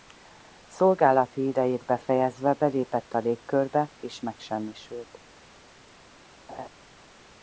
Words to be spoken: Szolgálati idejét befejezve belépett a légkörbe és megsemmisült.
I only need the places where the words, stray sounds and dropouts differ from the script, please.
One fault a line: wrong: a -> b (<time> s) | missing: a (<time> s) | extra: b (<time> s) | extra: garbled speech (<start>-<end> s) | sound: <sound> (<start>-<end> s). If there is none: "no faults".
sound: laugh (6.5-6.7 s)